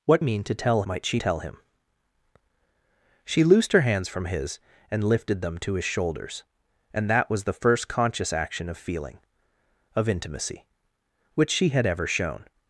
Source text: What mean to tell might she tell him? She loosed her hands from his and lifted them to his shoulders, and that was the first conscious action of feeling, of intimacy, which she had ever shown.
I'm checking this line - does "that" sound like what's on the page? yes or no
yes